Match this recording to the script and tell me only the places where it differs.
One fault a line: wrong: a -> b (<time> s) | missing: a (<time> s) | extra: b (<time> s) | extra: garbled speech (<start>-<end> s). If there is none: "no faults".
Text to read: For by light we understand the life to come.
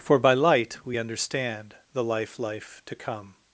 extra: life (2.4 s)